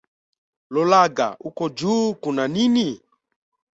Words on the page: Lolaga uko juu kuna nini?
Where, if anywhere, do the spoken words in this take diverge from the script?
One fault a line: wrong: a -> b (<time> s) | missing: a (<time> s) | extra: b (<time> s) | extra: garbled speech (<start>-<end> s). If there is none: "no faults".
no faults